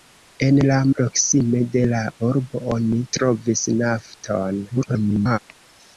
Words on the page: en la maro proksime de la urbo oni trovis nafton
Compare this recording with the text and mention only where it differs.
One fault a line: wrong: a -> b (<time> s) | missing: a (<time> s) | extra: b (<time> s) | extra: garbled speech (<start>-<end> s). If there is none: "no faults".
missing: maro (0.8 s)
extra: garbled speech (4.7-5.4 s)